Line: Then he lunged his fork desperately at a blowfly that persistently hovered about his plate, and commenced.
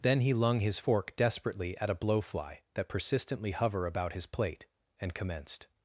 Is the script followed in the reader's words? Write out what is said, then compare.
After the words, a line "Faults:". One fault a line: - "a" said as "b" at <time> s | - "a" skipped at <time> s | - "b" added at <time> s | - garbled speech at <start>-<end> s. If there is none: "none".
Then he lung his fork desperately at a blowfly that persistently hover about his plate, and commenced.
Faults:
- "lunged" said as "lung" at 0.3 s
- "hovered" said as "hover" at 3.5 s